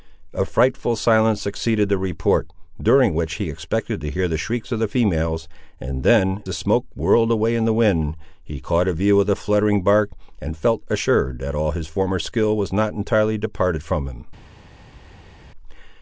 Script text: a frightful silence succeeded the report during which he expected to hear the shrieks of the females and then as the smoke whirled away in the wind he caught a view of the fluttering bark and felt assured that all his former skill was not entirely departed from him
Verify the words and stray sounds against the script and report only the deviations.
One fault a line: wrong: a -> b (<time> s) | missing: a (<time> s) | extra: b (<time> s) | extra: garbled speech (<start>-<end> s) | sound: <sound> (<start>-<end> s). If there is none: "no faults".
missing: as (6.4 s)